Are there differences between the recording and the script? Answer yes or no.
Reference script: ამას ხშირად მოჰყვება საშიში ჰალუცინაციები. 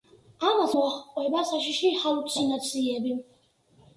yes